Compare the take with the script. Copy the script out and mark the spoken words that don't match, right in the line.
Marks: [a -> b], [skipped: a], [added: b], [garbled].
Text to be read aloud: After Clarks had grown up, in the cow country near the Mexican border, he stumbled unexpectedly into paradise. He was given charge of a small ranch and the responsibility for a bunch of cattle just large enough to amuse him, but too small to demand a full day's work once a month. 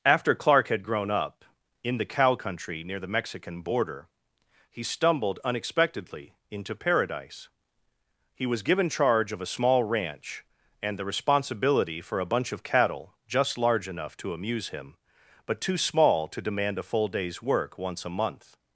After [Clarks -> Clark] had grown up, in the cow country near the Mexican border, he stumbled unexpectedly into paradise. He was given charge of a small ranch and the responsibility for a bunch of cattle just large enough to amuse him, but too small to demand a full day's work once a month.